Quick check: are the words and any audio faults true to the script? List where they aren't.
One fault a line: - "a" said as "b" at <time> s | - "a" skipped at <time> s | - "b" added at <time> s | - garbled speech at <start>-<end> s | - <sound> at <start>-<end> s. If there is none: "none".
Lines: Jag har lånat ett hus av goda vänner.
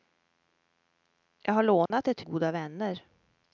- dropout at 1.9-1.9 s
- "hus av" skipped at 2.2 s